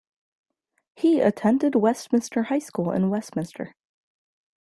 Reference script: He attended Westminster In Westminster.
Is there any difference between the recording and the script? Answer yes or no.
yes